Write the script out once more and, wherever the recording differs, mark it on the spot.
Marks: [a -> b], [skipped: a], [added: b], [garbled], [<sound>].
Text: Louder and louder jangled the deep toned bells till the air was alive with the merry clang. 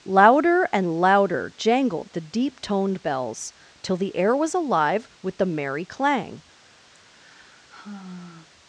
Louder and louder jangled the deep toned bells till the air was alive with the merry clang. [sigh]